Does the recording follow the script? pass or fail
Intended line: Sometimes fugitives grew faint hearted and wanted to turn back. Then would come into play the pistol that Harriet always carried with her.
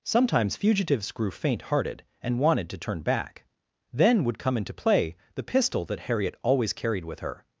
pass